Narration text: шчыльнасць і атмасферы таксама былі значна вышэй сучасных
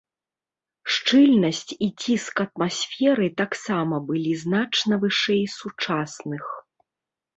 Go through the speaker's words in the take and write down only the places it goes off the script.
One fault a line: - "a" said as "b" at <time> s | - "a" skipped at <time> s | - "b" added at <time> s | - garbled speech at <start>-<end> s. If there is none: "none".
- "ціск" added at 2.0 s